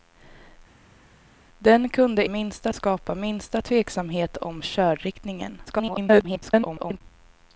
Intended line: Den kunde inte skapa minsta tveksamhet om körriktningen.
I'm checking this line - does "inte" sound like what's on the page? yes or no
no